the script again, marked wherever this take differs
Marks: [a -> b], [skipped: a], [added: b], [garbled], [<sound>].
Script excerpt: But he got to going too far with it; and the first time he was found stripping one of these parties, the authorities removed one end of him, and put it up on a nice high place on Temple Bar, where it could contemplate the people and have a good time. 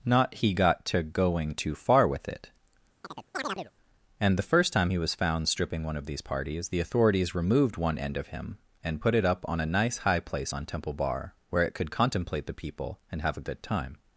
[But -> Not] he got to going too far with it; [chirp] and the first time he was found stripping one of these parties, the authorities removed one end of him, and put it up on a nice high place on Temple Bar, where it could contemplate the people and have a good time.